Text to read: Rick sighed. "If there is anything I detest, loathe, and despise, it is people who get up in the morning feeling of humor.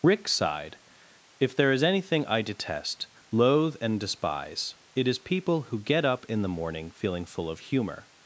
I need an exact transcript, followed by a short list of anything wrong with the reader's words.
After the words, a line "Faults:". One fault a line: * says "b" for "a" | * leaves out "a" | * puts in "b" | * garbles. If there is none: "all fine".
Rick sighed. "If there is anything I detest, loathe, and despise, it is people who get up in the morning feeling full of humor.
Faults:
* puts in "full"